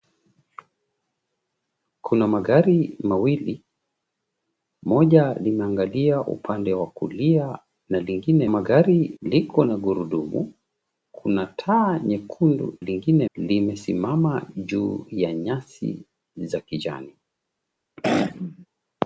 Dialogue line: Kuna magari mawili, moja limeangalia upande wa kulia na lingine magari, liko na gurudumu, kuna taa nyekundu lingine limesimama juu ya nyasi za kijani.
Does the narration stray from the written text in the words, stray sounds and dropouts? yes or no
yes